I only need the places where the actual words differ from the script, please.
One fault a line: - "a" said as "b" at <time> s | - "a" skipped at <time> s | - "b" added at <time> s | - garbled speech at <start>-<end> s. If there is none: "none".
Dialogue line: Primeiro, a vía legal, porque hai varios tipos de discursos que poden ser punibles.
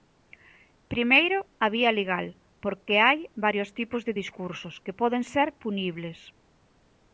none